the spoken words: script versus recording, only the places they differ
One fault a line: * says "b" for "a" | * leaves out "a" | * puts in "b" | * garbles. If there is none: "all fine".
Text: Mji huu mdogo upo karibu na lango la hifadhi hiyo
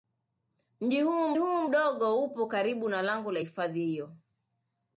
* puts in "huu"